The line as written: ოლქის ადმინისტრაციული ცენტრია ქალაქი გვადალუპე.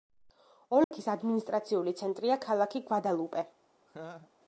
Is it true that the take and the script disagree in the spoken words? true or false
false